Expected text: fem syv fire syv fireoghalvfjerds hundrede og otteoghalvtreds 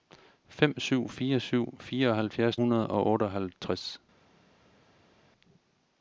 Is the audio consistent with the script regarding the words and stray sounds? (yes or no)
yes